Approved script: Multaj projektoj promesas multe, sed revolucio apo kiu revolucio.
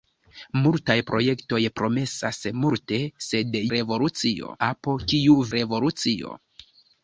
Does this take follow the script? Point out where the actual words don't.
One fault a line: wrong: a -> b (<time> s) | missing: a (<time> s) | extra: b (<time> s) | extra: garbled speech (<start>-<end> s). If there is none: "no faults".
no faults